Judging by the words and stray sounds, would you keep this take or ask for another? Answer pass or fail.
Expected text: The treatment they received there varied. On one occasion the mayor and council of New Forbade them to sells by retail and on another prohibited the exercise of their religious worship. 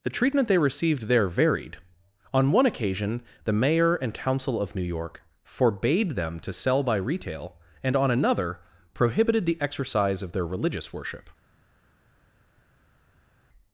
fail